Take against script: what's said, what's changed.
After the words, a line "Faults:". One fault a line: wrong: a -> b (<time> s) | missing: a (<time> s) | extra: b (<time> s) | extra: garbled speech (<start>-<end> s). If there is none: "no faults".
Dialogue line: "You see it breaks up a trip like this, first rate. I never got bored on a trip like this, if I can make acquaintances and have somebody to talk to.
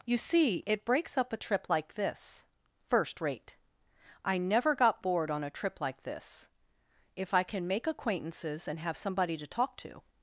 "You see it breaks up a trip like this, first rate. I never got bored on a trip like this, if I can make acquaintances and have somebody to talk to.
Faults:
no faults